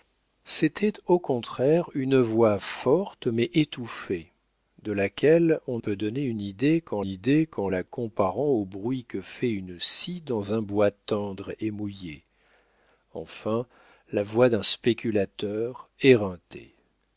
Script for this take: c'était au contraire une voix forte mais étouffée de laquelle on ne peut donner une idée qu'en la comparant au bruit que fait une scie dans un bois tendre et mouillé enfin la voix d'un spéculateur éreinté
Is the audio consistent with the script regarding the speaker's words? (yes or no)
no